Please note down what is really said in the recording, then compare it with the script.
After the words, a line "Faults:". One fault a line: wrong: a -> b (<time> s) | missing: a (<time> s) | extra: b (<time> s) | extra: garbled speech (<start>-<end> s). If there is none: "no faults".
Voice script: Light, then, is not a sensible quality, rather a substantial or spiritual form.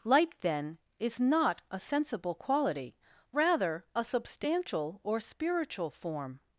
Light, then, is not a sensible quality, rather a substantial or spiritual form.
Faults:
no faults